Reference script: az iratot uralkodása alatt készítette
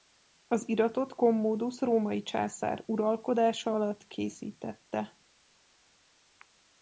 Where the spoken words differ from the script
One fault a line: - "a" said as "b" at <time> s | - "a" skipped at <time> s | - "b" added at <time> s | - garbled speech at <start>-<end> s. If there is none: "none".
- "commodus római császár" added at 1.1 s